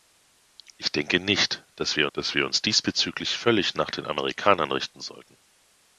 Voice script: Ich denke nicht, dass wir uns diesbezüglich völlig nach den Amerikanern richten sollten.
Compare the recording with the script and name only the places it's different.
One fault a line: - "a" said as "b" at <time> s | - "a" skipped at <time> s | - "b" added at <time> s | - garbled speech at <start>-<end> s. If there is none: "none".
- "dass wir" added at 2.1 s